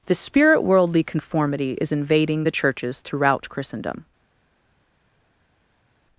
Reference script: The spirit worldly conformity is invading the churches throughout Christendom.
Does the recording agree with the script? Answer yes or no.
yes